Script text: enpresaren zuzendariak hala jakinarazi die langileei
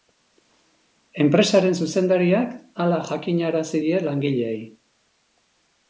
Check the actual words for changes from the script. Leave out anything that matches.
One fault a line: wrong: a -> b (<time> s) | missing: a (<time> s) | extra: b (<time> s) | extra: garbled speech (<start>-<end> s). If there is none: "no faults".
no faults